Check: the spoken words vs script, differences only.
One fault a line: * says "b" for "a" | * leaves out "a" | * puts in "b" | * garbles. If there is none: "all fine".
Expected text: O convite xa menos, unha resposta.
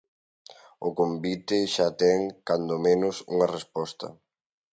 * puts in "ten cando"